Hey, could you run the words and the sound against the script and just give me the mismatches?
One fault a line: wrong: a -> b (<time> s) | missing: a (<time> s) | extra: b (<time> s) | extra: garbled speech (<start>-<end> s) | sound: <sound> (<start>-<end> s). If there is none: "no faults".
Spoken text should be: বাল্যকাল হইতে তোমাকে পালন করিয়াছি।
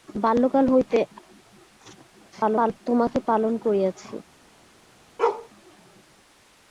extra: garbled speech (2.3-2.8 s)
sound: bark (5.2-5.5 s)